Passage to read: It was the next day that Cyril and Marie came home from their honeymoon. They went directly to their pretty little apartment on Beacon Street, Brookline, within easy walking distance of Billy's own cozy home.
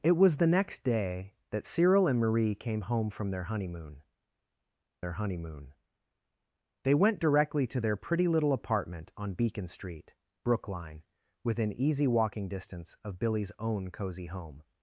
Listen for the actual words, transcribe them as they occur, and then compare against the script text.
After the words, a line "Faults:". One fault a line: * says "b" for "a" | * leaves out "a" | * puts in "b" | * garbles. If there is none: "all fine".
It was the next day that Cyril and Marie came home from their honeymoon their honeymoon. They went directly to their pretty little apartment on Beacon Street, Brookline, within easy walking distance of Billy's own cozy home.
Faults:
* puts in "their honeymoon"